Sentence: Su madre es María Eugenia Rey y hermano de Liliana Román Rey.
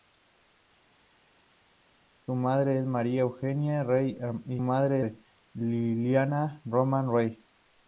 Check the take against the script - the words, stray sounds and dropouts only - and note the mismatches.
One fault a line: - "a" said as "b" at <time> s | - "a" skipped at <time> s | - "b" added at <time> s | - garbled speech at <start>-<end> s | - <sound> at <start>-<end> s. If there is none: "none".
- "hermano" said as "madre" at 4.6 s